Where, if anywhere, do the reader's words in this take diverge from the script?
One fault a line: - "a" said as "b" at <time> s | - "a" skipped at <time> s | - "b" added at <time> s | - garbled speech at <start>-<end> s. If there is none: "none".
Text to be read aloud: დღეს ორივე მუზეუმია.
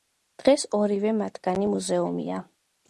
- "მათგანი" added at 1.2 s